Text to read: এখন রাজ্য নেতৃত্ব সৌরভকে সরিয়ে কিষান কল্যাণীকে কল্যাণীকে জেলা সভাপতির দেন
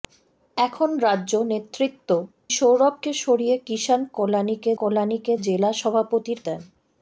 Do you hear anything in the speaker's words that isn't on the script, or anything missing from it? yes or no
no